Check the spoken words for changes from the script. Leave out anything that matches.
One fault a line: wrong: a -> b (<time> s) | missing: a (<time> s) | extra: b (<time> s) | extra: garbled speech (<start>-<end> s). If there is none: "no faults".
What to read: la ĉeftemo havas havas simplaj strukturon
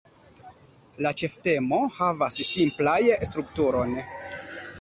missing: havas (2.4 s)